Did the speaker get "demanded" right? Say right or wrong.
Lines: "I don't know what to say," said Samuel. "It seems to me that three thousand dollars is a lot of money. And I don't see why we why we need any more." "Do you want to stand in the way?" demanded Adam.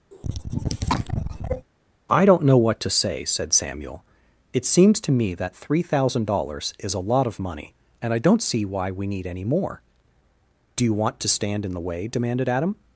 right